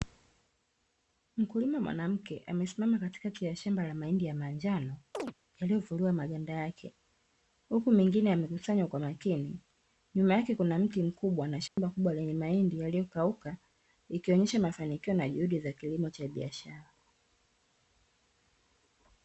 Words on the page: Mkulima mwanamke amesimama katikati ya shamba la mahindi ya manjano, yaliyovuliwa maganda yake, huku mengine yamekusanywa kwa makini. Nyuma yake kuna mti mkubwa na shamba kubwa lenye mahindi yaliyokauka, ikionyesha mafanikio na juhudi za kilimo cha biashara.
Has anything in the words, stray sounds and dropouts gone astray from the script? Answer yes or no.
yes